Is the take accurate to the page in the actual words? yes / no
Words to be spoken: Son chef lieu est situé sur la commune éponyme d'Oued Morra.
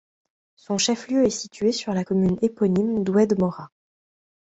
yes